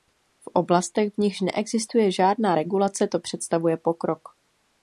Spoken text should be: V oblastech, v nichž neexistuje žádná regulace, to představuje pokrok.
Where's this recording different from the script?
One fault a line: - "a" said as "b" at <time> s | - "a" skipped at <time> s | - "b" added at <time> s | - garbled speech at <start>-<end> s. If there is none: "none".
none